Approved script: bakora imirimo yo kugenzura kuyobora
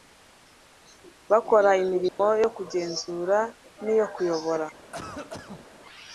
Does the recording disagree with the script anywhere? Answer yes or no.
yes